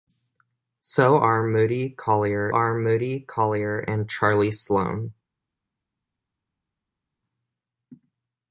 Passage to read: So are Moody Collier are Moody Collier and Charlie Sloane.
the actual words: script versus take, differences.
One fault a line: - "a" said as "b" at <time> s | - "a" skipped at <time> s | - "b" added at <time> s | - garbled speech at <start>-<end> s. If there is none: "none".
none